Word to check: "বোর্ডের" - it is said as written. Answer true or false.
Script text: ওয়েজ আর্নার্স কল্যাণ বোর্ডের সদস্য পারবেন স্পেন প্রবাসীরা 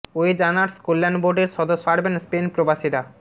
true